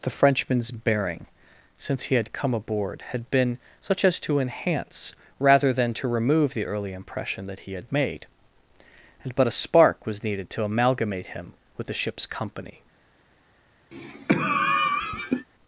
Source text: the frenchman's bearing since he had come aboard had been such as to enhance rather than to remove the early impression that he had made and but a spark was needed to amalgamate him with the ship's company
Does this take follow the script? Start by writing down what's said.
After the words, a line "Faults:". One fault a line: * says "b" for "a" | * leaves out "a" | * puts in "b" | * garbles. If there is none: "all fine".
the frenchman's bearing since he had come aboard had been such as to enhance rather than to remove the early impression that he had made and but a spark was needed to amalgamate him with the ship's company
Faults:
all fine